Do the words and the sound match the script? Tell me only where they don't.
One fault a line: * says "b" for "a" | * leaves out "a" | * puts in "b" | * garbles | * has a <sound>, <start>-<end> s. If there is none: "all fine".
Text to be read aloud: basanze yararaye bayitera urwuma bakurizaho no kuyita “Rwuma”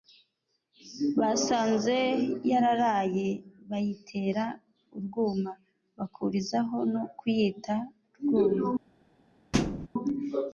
* has a thud, 9.5-9.9 s